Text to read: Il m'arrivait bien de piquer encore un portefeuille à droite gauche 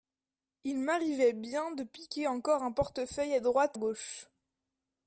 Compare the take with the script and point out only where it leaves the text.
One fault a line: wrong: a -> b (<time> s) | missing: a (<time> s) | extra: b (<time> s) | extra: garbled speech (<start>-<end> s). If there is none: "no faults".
no faults